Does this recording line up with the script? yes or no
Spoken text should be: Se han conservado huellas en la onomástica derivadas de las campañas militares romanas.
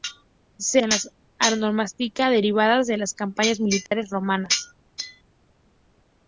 no